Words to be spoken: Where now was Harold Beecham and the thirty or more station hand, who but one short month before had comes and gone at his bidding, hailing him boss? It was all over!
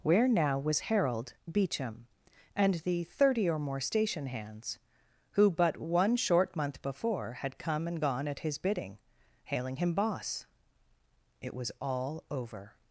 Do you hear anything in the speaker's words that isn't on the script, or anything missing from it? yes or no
yes